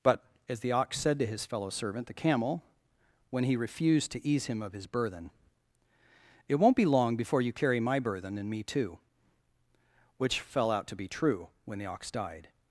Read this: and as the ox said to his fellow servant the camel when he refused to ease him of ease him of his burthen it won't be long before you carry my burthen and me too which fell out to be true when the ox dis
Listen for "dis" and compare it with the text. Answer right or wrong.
wrong